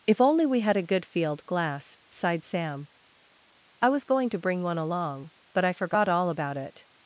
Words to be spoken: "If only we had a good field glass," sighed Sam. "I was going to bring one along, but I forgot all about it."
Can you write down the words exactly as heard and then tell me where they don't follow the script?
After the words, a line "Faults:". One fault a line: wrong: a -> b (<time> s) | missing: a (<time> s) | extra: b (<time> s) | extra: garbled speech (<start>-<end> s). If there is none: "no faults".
"If only we had a good field glass," sighed Sam. "I was going to bring one along, but I forgot all about it."
Faults:
no faults